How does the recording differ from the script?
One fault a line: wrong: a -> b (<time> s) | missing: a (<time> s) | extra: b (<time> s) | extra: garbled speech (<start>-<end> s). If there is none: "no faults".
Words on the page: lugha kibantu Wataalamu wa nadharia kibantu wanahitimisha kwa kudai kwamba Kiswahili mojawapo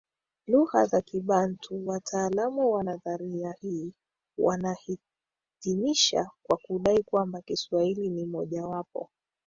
extra: za (0.8 s)
wrong: kibantu -> hii (3.6 s)
extra: ni (8.1 s)